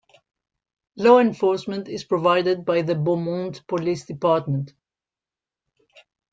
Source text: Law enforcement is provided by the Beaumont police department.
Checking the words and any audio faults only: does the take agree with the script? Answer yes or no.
yes